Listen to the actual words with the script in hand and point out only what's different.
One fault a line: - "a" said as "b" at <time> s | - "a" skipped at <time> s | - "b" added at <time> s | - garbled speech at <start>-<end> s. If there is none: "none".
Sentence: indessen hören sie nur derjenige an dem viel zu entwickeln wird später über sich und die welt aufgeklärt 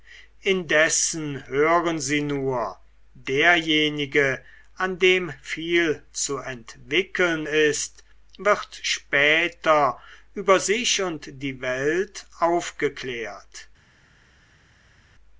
- "ist" added at 7.4 s